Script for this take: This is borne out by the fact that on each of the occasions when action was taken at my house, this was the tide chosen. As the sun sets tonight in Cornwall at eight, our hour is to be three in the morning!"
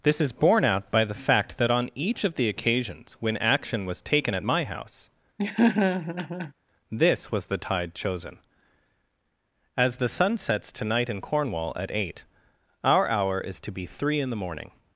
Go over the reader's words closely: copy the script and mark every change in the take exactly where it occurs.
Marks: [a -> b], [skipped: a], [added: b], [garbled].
This is borne out by the fact that on each of the occasions when action was taken at my house, this was the tide chosen. As the sun sets tonight in Cornwall at eight, our hour is to be three in the morning!"